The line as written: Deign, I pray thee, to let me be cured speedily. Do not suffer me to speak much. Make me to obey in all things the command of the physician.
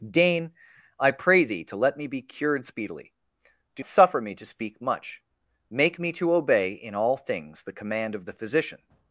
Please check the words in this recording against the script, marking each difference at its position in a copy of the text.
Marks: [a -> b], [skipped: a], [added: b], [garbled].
Deign, I pray thee, to let me be cured speedily. Do [skipped: not] suffer me to speak much. Make me to obey in all things the command of the physician.